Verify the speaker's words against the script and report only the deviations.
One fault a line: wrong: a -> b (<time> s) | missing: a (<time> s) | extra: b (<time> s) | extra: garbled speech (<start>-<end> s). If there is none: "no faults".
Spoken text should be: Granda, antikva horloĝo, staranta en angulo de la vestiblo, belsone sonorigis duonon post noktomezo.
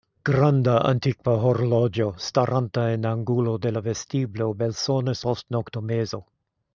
missing: sonorigis duonon (5.2 s)